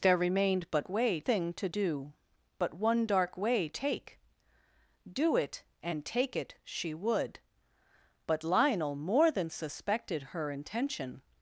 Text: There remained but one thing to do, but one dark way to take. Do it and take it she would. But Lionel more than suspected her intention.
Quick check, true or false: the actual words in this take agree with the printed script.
false